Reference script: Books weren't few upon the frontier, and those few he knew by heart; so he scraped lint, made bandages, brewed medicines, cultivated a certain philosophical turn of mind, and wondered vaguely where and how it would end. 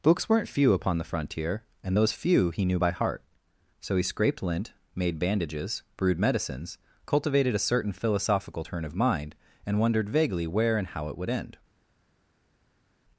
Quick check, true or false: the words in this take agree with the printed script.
true